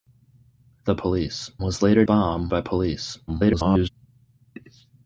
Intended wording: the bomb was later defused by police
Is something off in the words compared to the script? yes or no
yes